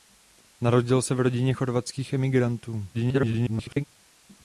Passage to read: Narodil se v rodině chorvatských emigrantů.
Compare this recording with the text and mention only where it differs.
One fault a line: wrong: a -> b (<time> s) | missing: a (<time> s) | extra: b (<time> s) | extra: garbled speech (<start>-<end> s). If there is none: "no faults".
extra: garbled speech (2.9-3.8 s)